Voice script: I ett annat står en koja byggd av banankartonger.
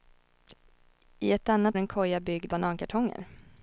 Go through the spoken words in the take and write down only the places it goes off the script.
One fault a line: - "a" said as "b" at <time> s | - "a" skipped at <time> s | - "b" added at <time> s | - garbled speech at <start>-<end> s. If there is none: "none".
- "står" skipped at 1.8 s
- "av" skipped at 2.5 s